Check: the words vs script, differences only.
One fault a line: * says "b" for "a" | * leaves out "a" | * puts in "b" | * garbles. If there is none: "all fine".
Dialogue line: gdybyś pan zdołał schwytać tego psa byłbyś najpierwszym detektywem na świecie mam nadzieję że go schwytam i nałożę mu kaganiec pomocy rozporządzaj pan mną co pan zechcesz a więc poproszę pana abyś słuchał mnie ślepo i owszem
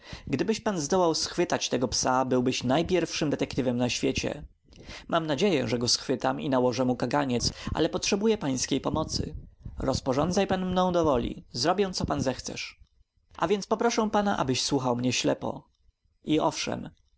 * puts in "ale potrzebuję pańskiej"
* puts in "do woli zrobię"